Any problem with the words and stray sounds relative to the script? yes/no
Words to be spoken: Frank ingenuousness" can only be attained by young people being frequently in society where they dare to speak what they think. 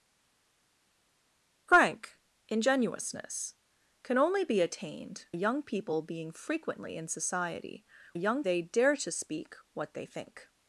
yes